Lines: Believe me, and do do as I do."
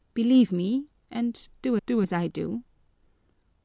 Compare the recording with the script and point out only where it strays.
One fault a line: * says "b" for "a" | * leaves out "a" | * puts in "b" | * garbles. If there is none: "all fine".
all fine